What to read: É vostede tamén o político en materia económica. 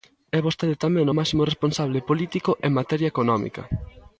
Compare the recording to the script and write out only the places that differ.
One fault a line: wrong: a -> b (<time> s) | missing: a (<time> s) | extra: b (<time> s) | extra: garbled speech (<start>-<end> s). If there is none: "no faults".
extra: máximo responsable (1.2 s)